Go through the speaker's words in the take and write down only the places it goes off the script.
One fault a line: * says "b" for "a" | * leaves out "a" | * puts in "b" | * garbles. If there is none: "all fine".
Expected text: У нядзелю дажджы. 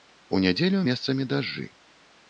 * puts in "месцамі"